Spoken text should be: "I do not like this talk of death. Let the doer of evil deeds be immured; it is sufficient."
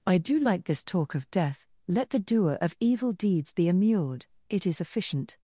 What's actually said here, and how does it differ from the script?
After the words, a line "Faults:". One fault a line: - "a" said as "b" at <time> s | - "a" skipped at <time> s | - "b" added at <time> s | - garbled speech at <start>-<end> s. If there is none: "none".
"I do like this talk of death. Let the doer of evil deeds be immured; it is sufficient."
Faults:
- "not" skipped at 0.4 s